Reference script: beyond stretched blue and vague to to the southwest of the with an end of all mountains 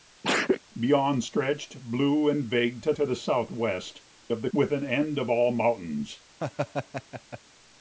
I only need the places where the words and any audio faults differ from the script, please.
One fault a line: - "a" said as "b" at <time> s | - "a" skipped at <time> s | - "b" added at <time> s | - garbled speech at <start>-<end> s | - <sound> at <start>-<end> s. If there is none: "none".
- sneeze at 0.2-0.6 s
- laugh at 6.4-7.4 s